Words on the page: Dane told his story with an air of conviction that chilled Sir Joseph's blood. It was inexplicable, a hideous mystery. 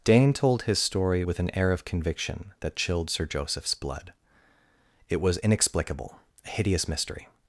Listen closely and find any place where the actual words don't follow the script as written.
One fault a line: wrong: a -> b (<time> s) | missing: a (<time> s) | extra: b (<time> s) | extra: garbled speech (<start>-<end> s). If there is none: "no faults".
no faults